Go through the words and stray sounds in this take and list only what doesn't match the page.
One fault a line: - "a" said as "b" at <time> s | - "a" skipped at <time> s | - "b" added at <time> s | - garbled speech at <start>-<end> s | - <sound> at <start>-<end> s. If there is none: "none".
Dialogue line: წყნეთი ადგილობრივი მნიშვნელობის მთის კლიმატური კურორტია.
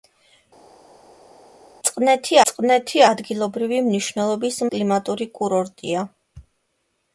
- "წყნეთი" added at 2.5 s
- "მთის" skipped at 4.6 s